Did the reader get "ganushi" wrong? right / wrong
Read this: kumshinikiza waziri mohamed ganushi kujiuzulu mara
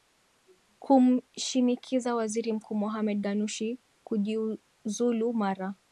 right